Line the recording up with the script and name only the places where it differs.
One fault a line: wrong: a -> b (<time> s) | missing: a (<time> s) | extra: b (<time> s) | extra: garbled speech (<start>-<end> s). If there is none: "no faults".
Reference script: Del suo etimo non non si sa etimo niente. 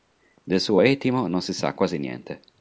missing: non (1.4 s)
wrong: etimo -> quasi (1.7 s)